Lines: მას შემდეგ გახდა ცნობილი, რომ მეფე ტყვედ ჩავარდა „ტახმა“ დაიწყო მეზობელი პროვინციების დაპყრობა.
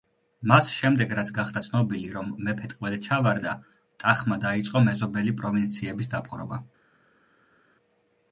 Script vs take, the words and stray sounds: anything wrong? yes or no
yes